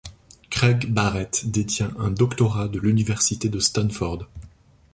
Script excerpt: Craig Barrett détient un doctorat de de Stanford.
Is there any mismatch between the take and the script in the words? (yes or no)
yes